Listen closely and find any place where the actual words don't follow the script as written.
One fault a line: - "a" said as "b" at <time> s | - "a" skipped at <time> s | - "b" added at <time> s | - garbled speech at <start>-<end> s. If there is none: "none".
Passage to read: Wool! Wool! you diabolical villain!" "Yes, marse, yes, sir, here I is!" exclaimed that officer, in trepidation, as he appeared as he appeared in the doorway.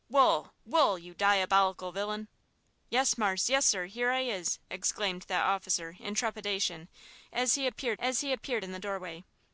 none